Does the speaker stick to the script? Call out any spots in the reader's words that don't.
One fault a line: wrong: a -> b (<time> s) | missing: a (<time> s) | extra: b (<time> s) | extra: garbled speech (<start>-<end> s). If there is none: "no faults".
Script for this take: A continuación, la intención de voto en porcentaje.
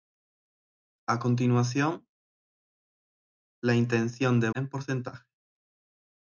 missing: voto (4.5 s)